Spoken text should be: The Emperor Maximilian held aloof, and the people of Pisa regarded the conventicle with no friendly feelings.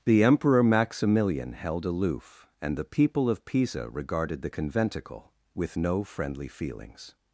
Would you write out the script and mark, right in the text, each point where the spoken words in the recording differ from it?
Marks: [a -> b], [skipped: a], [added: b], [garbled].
The Emperor Maximilian held aloof, and the people of Pisa regarded the conventicle with no friendly feelings.